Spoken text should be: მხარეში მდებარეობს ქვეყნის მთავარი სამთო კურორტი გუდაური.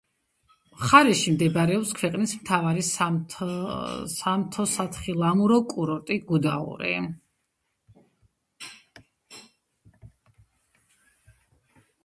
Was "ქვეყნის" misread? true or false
false